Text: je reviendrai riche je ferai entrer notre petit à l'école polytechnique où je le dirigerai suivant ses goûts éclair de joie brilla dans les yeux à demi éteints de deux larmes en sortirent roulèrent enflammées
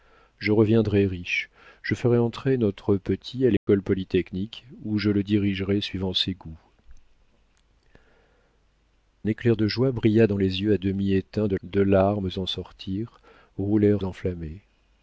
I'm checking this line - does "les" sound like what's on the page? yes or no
yes